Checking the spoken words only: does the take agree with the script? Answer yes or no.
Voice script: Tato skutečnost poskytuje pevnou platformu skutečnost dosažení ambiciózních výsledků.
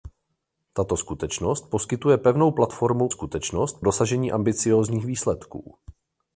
yes